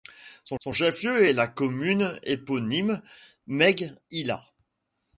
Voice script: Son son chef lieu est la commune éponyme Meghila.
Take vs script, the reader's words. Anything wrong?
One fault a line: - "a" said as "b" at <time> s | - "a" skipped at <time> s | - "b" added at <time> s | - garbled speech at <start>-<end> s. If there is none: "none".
none